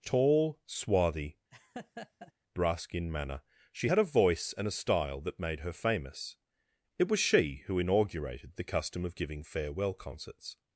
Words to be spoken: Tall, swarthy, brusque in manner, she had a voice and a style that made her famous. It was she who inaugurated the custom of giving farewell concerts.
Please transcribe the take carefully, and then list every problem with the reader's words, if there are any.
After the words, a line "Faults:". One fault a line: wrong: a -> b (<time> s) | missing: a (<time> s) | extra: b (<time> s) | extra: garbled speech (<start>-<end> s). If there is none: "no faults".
Tall, swarthy, brusque in manner, she had a voice and a style that made her famous. It was she who inaugurated the custom of giving farewell concerts.
Faults:
no faults